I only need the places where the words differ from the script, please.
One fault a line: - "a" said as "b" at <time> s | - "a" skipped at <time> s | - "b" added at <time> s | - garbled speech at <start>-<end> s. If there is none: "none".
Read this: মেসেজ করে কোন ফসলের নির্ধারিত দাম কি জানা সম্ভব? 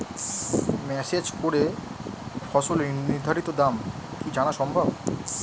- "কোন" skipped at 1.6 s